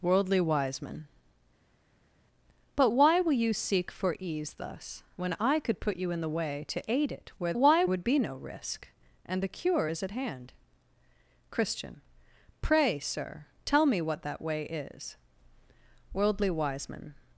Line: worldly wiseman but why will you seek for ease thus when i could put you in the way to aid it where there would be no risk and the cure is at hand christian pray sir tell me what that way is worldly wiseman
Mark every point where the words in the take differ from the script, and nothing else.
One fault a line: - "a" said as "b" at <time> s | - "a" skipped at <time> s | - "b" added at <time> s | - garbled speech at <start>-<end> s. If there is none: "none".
- "there" said as "why" at 7.5 s